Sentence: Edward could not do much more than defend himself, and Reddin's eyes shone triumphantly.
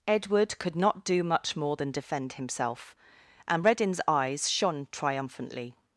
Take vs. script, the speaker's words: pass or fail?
pass